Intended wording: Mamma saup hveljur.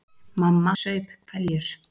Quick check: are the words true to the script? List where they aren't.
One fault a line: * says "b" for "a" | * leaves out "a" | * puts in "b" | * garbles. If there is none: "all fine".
all fine